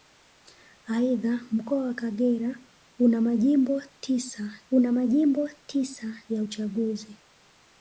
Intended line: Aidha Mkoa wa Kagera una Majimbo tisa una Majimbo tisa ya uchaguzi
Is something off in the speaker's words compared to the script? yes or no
no